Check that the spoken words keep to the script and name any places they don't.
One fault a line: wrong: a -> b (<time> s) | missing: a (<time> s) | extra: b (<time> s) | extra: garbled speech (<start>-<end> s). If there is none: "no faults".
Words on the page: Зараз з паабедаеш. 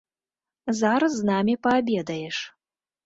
extra: намі (1.3 s)